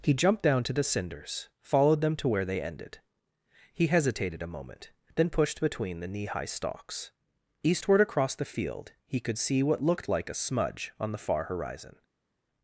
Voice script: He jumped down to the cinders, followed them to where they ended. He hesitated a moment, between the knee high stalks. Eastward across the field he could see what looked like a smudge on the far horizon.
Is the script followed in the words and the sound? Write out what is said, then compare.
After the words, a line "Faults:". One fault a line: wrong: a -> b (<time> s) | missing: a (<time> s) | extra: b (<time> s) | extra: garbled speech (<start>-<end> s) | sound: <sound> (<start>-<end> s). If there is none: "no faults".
He jumped down to the cinders, followed them to where they ended. He hesitated a moment, then pushed between the knee high stalks. Eastward across the field he could see what looked like a smudge on the far horizon.
Faults:
extra: then pushed (5.2 s)